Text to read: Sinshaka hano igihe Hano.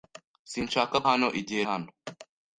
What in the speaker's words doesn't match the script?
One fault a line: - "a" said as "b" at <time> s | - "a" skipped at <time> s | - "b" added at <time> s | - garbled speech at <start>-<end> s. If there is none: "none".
none